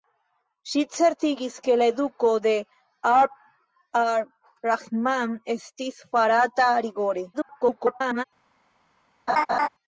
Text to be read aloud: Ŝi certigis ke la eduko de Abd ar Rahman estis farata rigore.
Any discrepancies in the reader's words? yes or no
yes